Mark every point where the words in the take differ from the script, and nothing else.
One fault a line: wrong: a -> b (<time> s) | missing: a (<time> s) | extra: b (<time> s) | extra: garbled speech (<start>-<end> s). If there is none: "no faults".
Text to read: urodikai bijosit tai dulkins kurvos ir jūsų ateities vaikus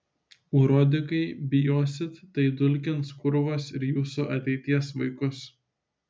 no faults